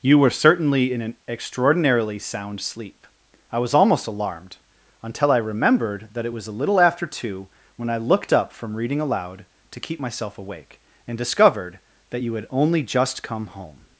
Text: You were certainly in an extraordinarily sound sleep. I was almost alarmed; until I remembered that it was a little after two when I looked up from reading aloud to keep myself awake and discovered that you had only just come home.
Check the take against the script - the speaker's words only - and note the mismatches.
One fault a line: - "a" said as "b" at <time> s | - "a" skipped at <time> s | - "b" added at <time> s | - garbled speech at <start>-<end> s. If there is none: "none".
none